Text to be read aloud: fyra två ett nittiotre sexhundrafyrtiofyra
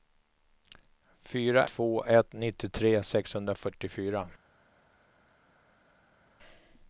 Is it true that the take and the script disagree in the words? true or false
false